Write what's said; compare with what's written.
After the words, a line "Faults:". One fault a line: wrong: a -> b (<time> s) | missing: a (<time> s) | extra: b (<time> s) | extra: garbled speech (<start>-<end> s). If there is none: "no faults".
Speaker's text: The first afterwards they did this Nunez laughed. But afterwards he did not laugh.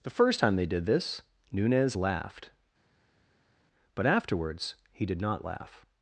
The first time they did this Nunez laughed. But afterwards he did not laugh.
Faults:
wrong: afterwards -> time (0.4 s)